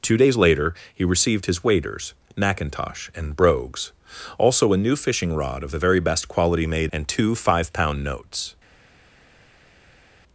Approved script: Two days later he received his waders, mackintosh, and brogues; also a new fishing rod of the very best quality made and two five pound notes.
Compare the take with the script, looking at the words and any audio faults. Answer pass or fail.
pass